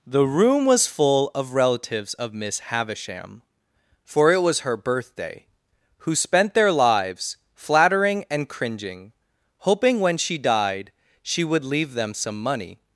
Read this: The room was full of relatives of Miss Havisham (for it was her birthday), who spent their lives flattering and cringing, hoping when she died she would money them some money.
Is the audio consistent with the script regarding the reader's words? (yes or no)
no